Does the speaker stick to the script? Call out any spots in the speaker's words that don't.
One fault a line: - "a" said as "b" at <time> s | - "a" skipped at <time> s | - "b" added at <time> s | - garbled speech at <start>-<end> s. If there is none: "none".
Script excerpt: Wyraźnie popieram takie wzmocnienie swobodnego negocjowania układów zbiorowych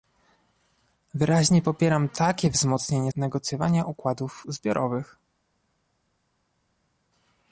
- "swobodnego" skipped at 3.1 s